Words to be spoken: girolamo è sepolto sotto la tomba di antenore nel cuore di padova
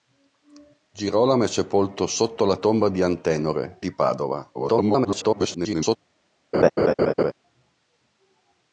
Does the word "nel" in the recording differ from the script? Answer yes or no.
yes